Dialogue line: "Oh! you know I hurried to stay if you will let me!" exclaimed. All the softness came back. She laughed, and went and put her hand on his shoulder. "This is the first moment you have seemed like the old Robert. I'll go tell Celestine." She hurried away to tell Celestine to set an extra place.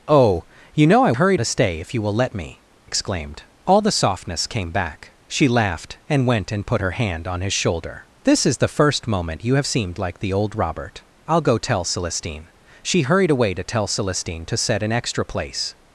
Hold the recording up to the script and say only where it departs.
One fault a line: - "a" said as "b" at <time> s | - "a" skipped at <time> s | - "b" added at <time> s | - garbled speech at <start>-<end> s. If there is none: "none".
none